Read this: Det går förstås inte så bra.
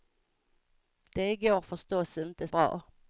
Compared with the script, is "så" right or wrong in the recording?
wrong